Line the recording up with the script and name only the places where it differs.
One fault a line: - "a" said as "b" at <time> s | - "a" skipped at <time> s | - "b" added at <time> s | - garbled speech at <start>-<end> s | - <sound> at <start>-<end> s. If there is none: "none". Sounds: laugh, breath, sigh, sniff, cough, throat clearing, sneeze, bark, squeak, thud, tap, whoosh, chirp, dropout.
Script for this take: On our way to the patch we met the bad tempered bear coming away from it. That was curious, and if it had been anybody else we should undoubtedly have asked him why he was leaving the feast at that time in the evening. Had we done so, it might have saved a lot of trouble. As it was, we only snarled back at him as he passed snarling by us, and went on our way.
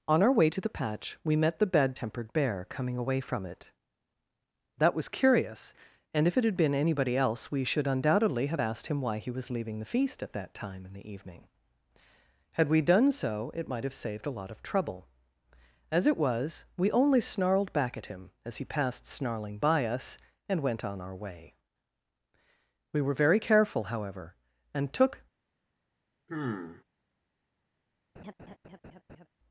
- "We were very careful however and took" added at 22.9 s
- sigh at 26.3-26.8 s
- laugh at 28.2-29.3 s